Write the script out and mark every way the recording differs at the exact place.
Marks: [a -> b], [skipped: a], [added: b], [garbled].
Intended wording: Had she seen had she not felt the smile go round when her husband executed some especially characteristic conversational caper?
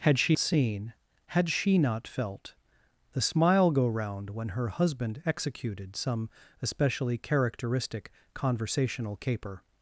Had she seen had she not felt the smile go round when her husband executed some especially characteristic conversational caper?